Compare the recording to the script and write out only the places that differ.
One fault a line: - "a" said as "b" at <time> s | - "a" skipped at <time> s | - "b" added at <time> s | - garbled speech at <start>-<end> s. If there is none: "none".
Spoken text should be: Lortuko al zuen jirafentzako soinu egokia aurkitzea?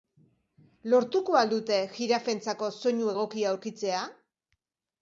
- "zuen" said as "dute" at 1.5 s